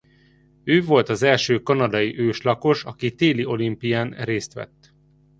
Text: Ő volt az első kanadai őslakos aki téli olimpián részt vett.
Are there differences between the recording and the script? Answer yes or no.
no